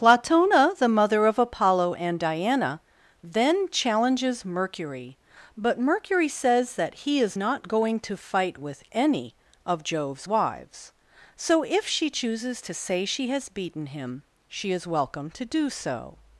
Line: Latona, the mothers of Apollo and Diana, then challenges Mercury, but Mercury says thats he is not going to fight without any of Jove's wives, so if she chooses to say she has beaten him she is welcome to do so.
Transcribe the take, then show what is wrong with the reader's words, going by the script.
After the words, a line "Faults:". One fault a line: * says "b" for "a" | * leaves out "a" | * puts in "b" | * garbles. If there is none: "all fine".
Latona, the mother of Apollo and Diana, then challenges Mercury, but Mercury says that he is not going to fight with any of Jove's wives, so if she chooses to say she has beaten him she is welcome to do so.
Faults:
* says "mother" for "mothers"
* says "that" for "thats"
* says "with" for "without"